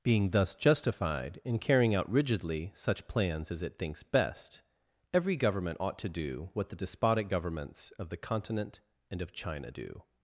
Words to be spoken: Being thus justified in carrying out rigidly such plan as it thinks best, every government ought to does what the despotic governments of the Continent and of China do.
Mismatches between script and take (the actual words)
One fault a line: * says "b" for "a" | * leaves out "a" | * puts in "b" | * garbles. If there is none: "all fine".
* says "plans" for "plan"
* says "do" for "does"